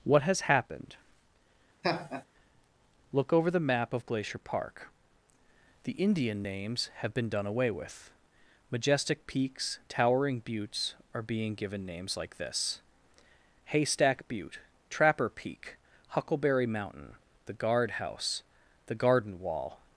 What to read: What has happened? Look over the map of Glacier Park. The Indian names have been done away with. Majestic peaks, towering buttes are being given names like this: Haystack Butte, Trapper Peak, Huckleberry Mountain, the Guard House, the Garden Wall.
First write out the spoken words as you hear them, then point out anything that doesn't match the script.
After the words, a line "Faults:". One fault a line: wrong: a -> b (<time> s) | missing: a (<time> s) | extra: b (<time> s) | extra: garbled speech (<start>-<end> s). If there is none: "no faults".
What has happened? Look over the map of Glacier Park. The Indian names have been done away with. Majestic peaks, towering buttes are being given names like this: Haystack Butte, Trapper Peak, Huckleberry Mountain, the Guard House, the Garden Wall.
Faults:
no faults